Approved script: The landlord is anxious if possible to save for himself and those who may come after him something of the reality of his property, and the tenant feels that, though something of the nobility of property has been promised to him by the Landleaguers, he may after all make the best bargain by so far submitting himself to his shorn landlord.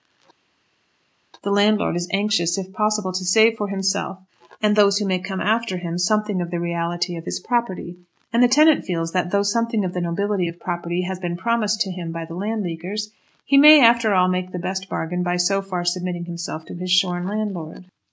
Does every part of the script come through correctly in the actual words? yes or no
yes